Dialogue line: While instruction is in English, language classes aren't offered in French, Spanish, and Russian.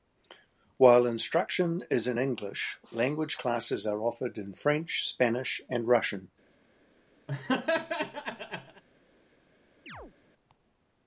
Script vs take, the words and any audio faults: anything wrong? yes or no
yes